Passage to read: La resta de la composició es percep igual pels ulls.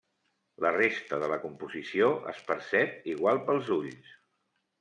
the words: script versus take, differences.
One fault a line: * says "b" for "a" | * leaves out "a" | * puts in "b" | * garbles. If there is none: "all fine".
all fine